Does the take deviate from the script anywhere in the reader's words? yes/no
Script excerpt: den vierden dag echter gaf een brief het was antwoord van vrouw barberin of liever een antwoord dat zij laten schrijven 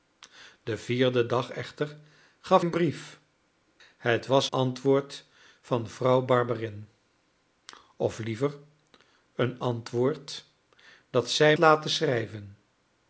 no